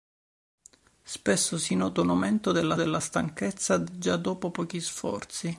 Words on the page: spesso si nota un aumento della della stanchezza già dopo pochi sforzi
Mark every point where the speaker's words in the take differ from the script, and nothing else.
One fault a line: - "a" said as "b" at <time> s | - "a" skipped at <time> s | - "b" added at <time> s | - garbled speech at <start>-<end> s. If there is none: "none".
none